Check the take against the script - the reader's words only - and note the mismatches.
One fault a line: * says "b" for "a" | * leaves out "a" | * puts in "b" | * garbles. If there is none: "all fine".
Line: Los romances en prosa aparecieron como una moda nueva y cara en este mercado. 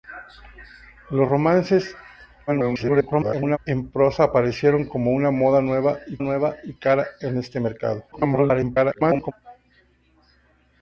* garbles
* puts in "nueva y"
* garbles